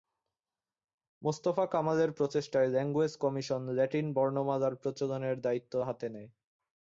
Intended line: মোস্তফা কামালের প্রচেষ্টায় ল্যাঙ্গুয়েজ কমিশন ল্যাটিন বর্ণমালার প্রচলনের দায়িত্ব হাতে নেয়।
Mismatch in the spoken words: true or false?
false